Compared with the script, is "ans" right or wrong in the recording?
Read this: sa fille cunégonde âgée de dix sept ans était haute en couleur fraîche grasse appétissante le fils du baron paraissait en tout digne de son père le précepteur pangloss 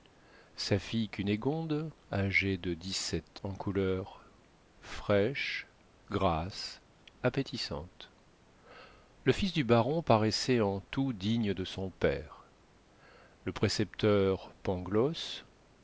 wrong